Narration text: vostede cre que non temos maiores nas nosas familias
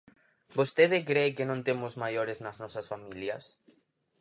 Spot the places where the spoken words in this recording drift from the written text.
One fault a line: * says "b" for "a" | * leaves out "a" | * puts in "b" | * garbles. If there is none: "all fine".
all fine